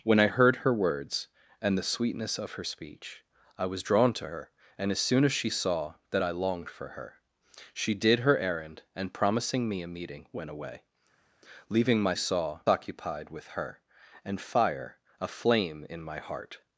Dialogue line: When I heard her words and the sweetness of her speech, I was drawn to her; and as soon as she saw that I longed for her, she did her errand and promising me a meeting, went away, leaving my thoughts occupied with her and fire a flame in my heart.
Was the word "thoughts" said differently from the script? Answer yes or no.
yes